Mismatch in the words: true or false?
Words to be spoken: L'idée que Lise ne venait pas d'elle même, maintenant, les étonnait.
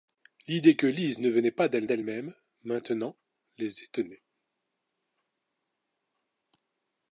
true